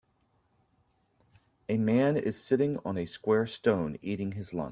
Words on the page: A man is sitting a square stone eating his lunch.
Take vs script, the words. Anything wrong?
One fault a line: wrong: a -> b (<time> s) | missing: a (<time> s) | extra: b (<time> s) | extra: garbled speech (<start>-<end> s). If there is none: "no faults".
extra: on (2.8 s)